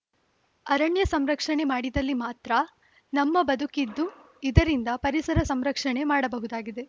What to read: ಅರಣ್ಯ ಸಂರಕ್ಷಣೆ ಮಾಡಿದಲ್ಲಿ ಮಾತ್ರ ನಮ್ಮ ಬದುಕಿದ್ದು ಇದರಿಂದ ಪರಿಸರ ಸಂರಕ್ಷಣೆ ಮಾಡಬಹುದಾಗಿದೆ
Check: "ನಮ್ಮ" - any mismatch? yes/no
no